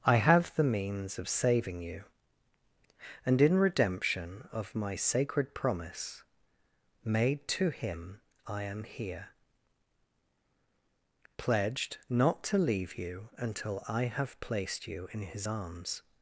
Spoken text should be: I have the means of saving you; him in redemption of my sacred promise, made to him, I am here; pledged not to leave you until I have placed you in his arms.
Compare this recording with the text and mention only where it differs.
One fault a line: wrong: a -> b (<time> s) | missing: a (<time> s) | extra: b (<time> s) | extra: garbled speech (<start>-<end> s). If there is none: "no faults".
wrong: him -> and (3.2 s)